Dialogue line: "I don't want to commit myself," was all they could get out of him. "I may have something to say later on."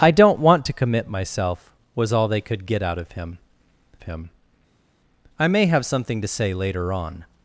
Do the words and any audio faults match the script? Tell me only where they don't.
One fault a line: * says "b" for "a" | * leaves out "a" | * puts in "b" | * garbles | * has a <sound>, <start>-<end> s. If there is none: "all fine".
* puts in "him"